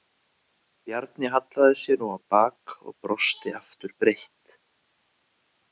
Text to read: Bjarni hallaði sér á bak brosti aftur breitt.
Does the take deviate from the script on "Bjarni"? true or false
false